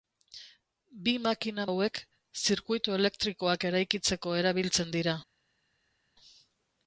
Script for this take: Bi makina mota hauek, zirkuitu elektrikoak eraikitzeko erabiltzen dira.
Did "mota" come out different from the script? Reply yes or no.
yes